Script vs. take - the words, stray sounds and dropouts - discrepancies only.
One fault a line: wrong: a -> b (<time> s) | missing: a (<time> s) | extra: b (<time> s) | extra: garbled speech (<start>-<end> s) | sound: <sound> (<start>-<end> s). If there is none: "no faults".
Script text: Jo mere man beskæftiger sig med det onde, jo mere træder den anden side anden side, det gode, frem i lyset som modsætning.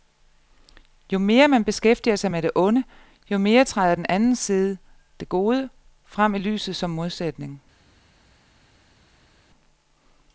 missing: anden side (4.8 s)